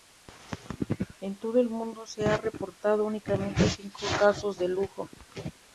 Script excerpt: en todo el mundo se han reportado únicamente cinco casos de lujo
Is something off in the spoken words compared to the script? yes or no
no